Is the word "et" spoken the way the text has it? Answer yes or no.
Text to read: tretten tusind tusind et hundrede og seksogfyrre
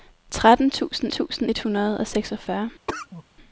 yes